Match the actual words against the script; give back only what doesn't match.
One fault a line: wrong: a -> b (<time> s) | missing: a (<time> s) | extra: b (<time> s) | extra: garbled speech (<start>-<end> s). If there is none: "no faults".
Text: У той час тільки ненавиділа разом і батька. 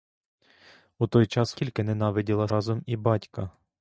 no faults